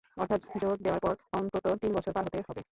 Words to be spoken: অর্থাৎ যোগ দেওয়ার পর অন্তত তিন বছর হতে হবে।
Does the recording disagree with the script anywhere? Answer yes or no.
yes